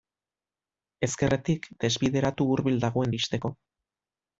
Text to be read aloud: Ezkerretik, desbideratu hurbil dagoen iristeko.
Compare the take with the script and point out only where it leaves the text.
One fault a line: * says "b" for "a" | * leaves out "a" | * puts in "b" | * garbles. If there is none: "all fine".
all fine